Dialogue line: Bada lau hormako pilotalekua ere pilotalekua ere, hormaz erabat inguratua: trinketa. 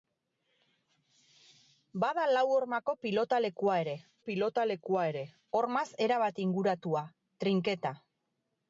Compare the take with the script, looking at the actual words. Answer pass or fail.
pass